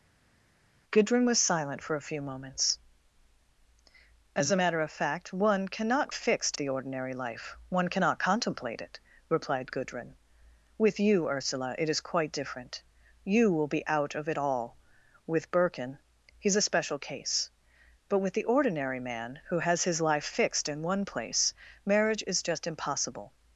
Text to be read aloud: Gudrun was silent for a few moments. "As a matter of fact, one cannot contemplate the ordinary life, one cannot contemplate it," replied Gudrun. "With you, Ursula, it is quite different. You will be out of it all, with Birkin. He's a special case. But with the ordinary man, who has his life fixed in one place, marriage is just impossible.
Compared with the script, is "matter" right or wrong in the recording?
right